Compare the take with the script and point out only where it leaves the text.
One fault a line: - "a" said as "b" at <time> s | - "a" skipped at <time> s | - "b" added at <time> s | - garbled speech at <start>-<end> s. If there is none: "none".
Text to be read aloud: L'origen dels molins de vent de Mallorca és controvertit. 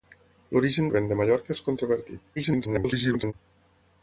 - "dels molins" skipped at 0.9 s
- garbled speech at 2.4-3.3 s